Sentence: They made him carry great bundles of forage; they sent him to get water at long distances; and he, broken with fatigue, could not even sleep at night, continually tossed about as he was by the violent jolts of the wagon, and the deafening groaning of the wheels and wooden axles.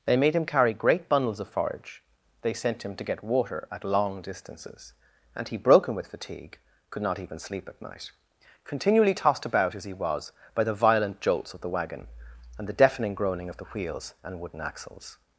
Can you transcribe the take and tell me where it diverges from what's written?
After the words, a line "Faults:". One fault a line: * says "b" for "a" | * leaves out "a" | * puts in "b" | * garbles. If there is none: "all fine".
They made him carry great bundles of forage; they sent him to get water at long distances; and he, broken with fatigue, could not even sleep at night, continually tossed about as he was by the violent jolts of the wagon, and the deafening groaning of the wheels and wooden axles.
Faults:
all fine